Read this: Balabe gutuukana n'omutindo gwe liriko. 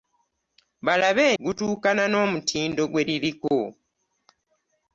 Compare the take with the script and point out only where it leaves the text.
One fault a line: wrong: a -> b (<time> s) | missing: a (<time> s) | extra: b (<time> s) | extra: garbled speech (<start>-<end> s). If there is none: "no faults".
no faults